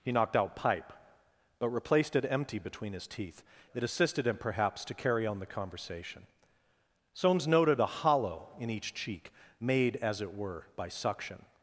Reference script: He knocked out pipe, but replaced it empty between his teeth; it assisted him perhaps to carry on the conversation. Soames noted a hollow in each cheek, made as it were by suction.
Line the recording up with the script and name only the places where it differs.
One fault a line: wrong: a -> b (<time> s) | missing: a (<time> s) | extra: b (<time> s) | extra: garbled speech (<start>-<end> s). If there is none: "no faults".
no faults